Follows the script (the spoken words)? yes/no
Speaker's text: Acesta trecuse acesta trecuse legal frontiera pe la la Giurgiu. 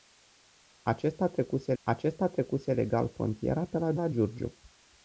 yes